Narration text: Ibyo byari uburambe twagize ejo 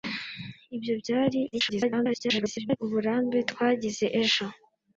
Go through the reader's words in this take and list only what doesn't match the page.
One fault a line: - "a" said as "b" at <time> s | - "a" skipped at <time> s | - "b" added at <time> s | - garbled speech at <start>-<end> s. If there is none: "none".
- garbled speech at 1.5-2.8 s